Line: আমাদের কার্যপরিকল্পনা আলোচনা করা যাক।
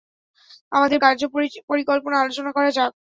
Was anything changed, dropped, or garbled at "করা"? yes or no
no